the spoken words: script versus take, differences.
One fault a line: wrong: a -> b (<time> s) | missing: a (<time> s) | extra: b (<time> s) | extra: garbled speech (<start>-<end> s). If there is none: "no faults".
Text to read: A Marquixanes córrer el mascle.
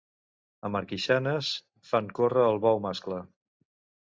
extra: fan (1.9 s)
extra: bou (2.7 s)